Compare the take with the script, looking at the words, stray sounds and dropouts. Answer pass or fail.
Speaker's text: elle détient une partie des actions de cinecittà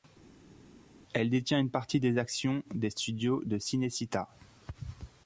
fail